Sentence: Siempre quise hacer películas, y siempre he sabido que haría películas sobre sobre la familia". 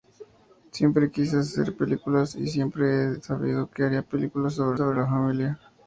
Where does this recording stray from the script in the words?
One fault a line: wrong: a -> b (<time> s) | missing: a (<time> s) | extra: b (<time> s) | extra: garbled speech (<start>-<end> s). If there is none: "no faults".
no faults